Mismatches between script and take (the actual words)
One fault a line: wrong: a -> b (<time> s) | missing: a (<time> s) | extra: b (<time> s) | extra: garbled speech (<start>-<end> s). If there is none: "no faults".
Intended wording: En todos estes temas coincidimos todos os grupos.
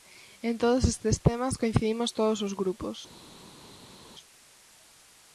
no faults